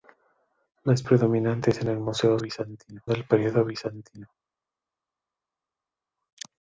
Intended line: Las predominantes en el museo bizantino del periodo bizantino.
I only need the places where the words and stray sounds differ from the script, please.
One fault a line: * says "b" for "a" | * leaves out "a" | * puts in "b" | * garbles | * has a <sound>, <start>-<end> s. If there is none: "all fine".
all fine